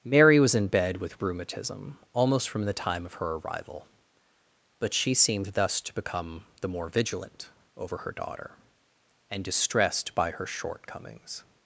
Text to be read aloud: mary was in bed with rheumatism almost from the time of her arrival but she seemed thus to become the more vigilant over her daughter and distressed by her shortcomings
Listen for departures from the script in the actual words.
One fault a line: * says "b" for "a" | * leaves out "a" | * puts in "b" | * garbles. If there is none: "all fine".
all fine